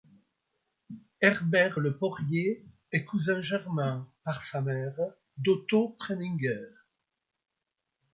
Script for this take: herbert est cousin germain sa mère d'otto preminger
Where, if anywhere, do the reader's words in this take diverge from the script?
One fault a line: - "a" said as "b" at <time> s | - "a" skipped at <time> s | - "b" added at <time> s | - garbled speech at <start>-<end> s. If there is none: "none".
- "le porrier" added at 1.8 s
- "par" added at 4.2 s